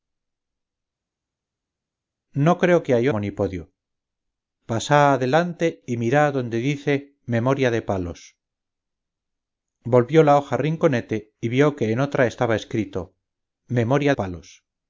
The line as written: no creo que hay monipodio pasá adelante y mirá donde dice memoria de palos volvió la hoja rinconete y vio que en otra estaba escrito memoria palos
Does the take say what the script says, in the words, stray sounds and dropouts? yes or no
yes